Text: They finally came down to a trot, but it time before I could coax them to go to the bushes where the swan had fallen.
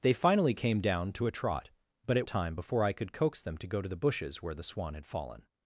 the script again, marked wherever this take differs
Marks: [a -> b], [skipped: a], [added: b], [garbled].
They finally came down to a trot, but it time before I could coax them to go to the bushes where the swan had fallen.